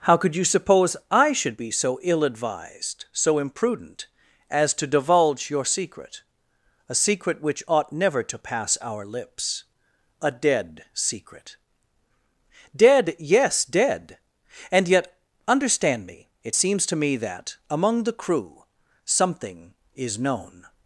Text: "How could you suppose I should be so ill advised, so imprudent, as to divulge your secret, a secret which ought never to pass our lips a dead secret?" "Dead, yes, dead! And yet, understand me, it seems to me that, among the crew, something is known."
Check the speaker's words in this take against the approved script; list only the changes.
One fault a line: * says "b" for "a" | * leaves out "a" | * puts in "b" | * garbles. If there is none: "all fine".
all fine